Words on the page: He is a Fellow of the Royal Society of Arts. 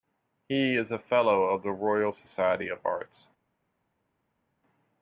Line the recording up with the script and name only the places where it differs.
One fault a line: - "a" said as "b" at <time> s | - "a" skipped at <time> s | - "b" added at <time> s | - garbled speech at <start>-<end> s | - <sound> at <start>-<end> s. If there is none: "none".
none